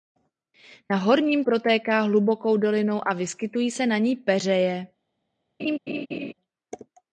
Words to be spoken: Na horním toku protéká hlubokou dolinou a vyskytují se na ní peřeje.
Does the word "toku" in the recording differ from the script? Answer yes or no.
yes